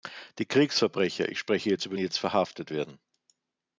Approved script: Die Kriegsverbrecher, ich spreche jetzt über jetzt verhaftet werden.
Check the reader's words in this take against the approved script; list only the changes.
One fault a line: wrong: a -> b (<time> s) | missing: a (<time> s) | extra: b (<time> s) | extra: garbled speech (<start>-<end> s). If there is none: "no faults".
no faults